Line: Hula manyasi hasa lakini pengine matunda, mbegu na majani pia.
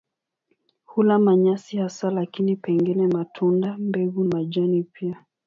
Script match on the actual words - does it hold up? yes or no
no